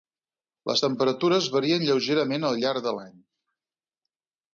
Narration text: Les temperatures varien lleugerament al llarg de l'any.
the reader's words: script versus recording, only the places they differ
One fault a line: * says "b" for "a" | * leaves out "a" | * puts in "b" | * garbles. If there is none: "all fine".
all fine